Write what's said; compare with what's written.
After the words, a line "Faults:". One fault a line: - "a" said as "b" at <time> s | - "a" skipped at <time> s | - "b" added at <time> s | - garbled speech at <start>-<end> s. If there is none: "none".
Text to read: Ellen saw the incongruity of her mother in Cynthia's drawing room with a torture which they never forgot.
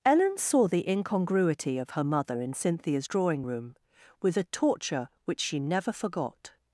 Ellen saw the incongruity of her mother in Cynthia's drawing room with a torture which she never forgot.
Faults:
- "they" said as "she" at 5.4 s